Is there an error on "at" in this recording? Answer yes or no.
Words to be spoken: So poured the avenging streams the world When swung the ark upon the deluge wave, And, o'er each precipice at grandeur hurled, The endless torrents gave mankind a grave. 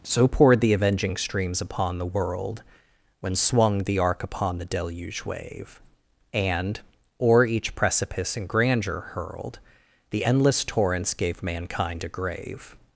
yes